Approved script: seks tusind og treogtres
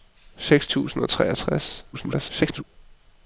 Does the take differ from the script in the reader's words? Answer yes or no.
yes